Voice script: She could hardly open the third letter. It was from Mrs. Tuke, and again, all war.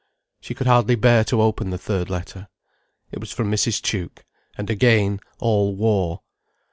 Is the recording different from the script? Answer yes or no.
yes